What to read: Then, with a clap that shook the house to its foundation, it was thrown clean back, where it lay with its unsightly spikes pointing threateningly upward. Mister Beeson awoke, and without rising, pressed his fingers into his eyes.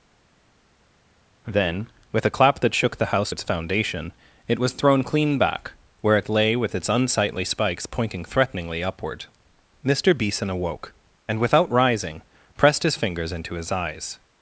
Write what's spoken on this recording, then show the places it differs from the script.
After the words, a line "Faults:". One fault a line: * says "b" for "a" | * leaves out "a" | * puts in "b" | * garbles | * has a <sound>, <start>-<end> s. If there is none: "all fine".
Then, with a clap that shook the house its foundation, it was thrown clean back, where it lay with its unsightly spikes pointing threateningly upward. Mister Beeson awoke, and without rising, pressed his fingers into his eyes.
Faults:
* leaves out "to"